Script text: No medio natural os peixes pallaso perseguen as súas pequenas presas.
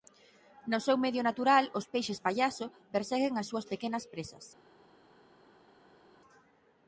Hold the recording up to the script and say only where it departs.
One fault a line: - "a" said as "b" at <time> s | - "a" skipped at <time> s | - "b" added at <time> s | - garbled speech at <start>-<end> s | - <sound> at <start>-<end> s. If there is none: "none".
- "seu" added at 0.8 s